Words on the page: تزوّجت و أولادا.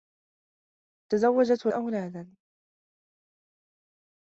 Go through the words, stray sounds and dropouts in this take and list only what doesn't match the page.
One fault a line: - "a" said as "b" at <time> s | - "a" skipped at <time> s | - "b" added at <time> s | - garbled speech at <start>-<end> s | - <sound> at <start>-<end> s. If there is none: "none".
none